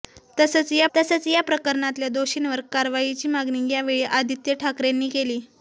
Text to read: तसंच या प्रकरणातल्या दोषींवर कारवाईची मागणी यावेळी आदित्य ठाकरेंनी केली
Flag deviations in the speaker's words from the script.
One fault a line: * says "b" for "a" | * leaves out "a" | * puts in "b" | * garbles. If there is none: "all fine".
* puts in "तसंच या"